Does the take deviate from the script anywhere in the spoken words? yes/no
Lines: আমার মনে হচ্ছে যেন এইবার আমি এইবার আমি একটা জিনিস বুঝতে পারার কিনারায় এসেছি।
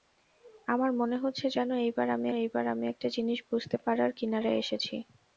no